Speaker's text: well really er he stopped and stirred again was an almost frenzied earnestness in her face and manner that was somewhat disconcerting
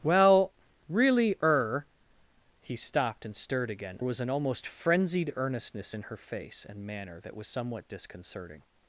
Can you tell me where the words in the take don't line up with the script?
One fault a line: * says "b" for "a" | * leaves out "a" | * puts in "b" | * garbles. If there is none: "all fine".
all fine